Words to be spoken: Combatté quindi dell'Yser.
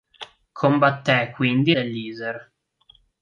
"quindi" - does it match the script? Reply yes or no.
yes